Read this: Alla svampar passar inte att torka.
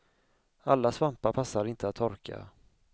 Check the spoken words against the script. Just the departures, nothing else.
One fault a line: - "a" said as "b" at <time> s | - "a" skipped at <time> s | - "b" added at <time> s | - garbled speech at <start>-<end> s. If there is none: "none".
none